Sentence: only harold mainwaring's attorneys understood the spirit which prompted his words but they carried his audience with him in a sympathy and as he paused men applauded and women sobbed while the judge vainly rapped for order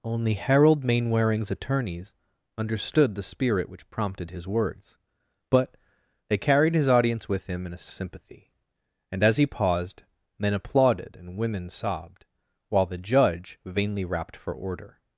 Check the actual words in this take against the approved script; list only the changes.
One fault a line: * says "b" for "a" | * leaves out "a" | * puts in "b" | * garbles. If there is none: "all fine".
all fine